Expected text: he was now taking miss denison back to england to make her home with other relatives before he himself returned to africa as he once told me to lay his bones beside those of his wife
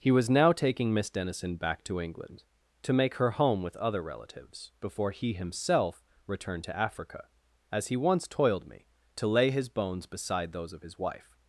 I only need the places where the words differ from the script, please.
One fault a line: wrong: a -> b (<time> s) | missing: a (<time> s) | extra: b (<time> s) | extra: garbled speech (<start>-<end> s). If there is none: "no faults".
wrong: told -> toiled (8.3 s)